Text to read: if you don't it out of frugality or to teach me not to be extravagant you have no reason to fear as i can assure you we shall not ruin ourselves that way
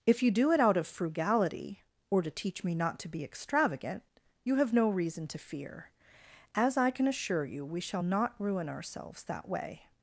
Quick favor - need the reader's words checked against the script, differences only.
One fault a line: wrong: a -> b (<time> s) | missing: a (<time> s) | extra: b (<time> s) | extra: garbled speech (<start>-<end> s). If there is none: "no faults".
wrong: don't -> do (0.3 s)